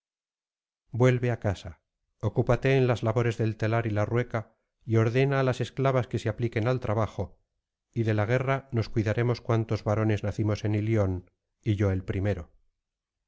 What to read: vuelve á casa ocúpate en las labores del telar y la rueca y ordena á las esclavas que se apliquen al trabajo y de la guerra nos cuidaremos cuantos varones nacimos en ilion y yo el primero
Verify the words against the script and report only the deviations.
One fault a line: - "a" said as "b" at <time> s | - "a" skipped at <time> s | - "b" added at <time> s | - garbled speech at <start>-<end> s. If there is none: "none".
none